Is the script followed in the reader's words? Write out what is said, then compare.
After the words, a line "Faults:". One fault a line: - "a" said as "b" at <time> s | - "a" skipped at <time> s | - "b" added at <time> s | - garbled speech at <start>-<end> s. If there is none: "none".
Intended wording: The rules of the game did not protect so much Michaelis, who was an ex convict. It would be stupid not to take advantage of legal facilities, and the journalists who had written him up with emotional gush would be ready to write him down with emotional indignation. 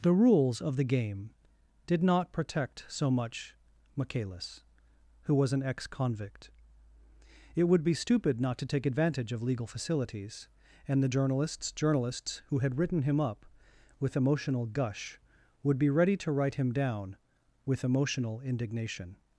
The rules of the game did not protect so much Michaelis, who was an ex convict. It would be stupid not to take advantage of legal facilities, and the journalists journalists who had written him up with emotional gush would be ready to write him down with emotional indignation.
Faults:
- "journalists" added at 11.7 s